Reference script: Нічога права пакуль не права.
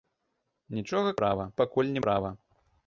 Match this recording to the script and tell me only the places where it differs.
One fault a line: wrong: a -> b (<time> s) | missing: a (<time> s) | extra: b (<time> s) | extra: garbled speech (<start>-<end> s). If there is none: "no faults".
no faults